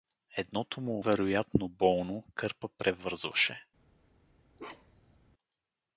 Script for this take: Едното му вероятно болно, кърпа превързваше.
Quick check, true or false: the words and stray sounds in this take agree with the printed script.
false